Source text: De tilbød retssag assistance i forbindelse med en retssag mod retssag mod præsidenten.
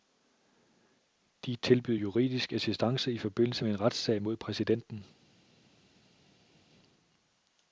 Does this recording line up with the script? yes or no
no